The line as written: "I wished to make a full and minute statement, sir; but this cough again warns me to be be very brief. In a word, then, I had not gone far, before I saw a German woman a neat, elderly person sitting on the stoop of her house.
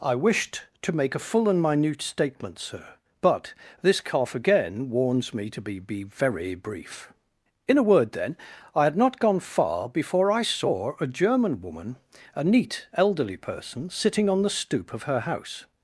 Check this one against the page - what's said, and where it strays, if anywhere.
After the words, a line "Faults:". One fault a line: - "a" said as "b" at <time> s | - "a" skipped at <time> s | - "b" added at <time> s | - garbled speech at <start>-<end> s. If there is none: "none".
"I wished to make a full and minute statement, sir; but this cough again warns me to be be very brief. In a word, then, I had not gone far, before I saw a German woman a neat, elderly person sitting on the stoop of her house.
Faults:
none